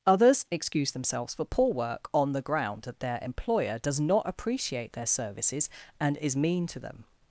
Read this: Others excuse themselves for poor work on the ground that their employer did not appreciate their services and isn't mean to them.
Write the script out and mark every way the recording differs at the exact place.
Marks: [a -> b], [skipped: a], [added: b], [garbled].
Others excuse themselves for poor work on the ground that their employer [did -> does] not appreciate their services and [isn't -> is] mean to them.